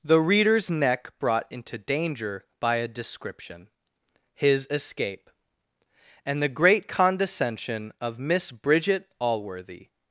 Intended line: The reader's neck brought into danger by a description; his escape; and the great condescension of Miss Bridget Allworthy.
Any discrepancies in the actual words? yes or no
no